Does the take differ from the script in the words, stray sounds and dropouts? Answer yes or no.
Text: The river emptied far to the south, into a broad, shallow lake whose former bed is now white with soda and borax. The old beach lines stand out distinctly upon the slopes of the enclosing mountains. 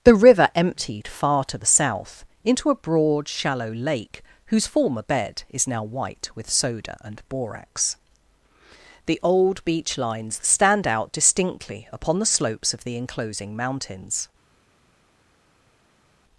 no